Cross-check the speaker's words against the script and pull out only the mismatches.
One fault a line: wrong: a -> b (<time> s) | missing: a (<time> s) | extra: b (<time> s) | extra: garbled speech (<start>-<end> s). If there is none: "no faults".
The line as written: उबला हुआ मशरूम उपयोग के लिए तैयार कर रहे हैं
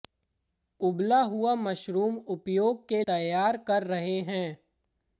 missing: लिए (3.0 s)